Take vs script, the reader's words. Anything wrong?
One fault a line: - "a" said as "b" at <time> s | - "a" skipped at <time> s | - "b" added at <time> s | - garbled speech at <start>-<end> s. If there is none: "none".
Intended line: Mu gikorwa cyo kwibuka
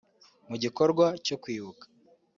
none